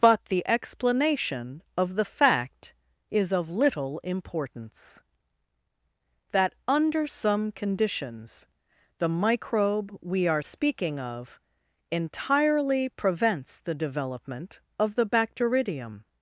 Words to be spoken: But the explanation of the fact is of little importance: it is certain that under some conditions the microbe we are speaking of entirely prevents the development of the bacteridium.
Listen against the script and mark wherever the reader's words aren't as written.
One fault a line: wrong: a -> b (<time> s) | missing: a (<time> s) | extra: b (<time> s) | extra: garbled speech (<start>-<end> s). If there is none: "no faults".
missing: it is certain (5.0 s)